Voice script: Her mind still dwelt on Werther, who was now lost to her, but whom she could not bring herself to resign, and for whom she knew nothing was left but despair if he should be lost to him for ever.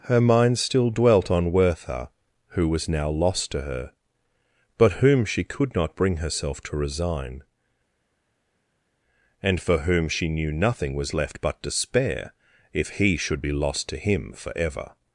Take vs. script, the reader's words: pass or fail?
pass